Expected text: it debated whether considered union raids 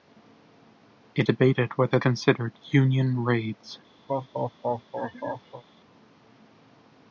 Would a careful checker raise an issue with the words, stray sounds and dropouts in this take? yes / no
yes